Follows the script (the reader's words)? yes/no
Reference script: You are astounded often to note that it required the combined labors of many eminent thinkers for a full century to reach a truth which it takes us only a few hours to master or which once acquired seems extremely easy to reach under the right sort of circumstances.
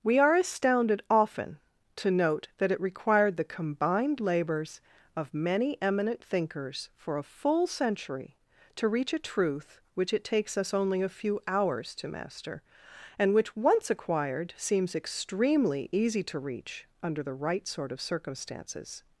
no